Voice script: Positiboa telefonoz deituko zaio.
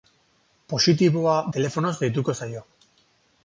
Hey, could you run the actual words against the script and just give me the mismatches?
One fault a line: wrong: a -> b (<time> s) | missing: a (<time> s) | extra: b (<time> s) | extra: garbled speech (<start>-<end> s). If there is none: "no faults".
no faults